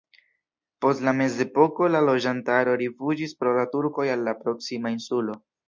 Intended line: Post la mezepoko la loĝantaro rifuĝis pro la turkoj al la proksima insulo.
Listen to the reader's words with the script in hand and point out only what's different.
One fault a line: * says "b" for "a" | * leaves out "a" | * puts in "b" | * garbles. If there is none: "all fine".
all fine